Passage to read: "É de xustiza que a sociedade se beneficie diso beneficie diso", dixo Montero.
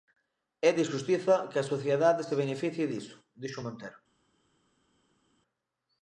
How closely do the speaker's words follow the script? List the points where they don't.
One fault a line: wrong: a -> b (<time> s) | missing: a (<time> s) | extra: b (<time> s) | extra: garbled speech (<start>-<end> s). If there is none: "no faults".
missing: beneficie diso (3.2 s)